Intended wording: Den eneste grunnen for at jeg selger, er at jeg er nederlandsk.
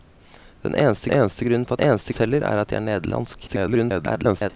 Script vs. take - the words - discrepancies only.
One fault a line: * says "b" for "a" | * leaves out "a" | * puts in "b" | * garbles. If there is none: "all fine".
* puts in "eneste"
* says "eneste" for "jeg"
* garbles